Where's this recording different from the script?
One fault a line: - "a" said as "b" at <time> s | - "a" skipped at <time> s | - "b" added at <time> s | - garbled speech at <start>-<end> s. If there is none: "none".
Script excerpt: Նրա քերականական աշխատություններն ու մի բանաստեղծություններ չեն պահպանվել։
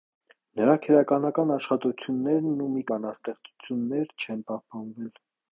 none